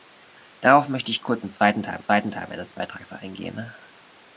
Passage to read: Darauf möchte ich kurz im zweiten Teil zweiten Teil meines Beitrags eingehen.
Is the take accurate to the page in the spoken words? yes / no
yes